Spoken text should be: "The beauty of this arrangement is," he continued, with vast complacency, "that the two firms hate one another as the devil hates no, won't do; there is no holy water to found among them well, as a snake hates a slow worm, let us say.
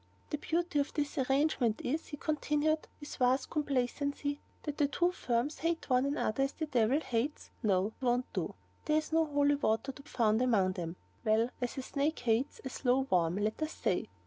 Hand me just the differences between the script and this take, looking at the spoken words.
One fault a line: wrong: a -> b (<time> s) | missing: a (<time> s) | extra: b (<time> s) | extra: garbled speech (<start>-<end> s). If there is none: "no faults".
no faults